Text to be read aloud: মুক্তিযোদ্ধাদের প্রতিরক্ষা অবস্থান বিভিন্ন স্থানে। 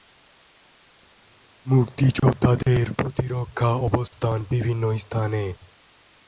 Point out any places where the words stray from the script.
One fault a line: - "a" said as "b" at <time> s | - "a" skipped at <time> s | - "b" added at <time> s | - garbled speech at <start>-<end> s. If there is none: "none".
none